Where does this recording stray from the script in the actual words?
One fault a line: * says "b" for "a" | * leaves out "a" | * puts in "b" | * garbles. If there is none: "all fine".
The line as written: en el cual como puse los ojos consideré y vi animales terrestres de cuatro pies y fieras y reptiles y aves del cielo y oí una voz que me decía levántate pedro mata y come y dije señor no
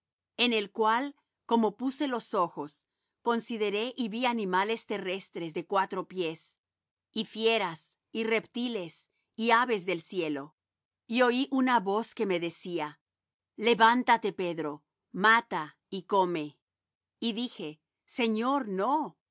all fine